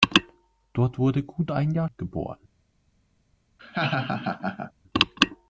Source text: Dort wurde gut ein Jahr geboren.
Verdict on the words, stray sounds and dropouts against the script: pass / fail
fail